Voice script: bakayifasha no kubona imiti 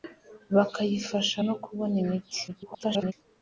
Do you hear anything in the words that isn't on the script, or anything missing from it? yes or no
yes